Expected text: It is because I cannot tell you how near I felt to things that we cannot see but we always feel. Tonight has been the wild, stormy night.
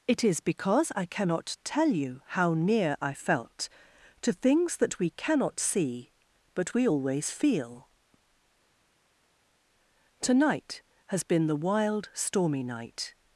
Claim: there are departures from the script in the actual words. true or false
false